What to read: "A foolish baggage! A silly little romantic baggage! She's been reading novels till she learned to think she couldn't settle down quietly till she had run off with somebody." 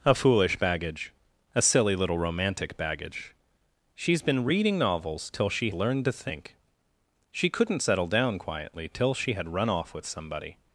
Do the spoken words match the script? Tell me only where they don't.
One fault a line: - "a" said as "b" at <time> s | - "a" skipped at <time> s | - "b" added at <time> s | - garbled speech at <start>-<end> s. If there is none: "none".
none